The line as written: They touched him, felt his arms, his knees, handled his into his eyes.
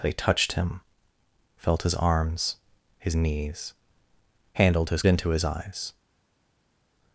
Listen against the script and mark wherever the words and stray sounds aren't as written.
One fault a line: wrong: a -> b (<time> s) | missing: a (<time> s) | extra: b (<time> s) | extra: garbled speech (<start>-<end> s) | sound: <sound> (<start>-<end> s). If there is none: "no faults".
no faults